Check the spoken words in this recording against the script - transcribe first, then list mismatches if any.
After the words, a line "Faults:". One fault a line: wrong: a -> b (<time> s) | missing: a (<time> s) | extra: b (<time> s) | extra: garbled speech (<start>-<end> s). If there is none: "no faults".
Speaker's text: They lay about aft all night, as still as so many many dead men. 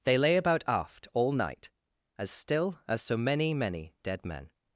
They lay about aft all night, as still as so many many dead men.
Faults:
no faults